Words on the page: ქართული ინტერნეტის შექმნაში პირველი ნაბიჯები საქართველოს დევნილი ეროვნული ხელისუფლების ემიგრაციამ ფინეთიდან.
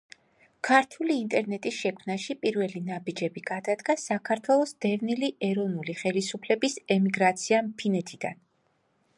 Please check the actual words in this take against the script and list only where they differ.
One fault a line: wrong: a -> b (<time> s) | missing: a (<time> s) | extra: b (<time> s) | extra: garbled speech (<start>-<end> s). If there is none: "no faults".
extra: გადადგა (3.5 s)